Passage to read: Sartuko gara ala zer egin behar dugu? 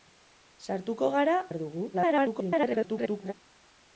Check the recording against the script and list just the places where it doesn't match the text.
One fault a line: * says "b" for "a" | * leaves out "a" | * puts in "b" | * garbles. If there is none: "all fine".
* leaves out "ala zer egin"
* garbles